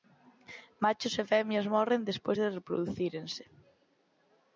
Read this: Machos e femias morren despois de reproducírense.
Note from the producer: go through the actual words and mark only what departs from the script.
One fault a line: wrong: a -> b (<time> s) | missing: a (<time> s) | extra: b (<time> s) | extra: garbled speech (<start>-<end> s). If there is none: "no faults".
no faults